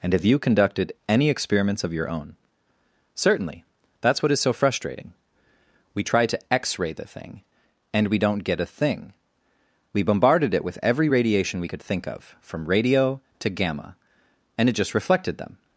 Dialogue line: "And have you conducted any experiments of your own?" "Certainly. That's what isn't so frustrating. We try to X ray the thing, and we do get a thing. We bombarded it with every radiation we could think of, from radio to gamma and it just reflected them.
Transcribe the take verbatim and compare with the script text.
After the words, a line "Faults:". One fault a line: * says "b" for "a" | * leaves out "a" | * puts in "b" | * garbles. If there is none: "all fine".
"And have you conducted any experiments of your own?" "Certainly. That's what is so frustrating. We try to X ray the thing, and we don't get a thing. We bombarded it with every radiation we could think of, from radio to gamma and it just reflected them.
Faults:
* says "is" for "isn't"
* says "don't" for "do"